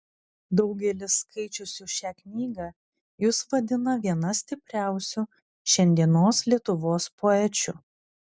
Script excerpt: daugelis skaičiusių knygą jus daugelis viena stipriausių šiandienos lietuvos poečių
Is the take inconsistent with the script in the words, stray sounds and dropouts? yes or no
yes